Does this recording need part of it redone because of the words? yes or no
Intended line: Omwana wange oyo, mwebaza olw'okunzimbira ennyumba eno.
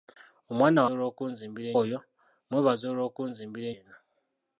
yes